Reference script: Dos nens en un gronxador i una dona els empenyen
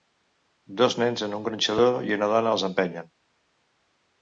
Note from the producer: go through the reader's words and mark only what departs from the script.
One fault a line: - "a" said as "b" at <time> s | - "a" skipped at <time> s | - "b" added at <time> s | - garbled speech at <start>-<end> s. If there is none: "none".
none